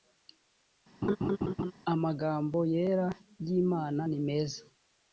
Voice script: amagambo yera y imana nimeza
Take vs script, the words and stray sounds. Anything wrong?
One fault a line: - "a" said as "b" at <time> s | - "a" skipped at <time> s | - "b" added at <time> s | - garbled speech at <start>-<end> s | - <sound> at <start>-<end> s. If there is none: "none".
- laugh at 1.0-1.7 s